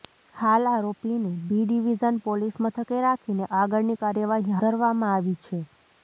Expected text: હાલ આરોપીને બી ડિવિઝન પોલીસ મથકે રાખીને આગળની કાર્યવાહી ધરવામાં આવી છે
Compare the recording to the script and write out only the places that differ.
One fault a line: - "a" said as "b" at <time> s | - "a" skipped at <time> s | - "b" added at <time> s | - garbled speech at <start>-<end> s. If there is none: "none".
none